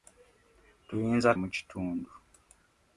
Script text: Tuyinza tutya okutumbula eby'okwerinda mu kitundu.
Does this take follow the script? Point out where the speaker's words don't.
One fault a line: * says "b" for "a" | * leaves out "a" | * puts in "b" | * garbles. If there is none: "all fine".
* leaves out "tutya okutumbula eby'okwerinda"